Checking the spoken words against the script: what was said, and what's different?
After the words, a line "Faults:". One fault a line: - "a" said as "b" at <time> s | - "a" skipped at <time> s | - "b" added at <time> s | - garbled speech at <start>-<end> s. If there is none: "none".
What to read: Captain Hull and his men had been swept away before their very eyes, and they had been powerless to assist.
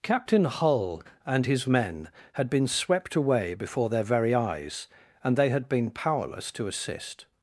Captain Hull and his men had been swept away before their very eyes, and they had been powerless to assist.
Faults:
none